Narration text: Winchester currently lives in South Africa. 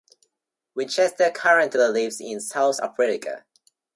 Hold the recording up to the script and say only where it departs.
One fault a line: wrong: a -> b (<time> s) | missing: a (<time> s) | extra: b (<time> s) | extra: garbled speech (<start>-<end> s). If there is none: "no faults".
no faults